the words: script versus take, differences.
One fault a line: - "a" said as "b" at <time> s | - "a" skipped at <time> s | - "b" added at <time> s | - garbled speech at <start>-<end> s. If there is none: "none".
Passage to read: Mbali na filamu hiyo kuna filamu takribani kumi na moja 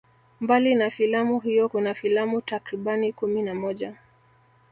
none